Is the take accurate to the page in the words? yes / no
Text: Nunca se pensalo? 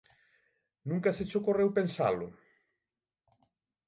no